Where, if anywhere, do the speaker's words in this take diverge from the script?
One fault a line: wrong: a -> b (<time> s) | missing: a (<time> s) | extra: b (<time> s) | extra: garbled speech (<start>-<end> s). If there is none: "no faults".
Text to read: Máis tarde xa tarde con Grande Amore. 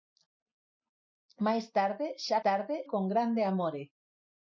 no faults